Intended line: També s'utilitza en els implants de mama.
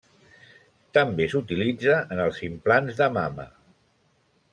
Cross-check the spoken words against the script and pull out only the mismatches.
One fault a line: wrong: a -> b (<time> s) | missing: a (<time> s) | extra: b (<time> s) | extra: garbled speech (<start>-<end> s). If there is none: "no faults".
no faults